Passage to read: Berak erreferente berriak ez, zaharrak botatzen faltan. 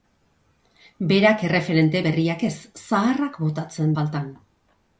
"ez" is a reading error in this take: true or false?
false